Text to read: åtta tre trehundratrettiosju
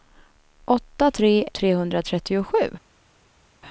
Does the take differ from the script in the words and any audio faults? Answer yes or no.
no